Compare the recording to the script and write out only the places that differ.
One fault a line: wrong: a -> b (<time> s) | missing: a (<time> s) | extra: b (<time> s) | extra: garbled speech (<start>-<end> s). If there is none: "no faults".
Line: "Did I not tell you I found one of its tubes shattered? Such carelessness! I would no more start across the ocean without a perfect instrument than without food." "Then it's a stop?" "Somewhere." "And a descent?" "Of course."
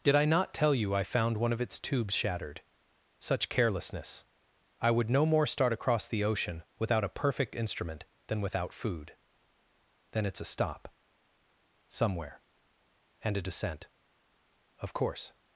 no faults